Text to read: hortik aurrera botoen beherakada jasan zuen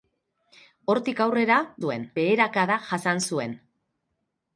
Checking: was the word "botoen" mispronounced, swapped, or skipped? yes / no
yes